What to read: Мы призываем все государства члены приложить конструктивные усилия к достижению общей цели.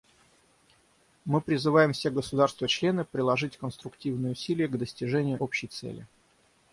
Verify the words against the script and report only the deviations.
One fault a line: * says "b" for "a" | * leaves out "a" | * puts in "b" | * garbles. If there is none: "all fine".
all fine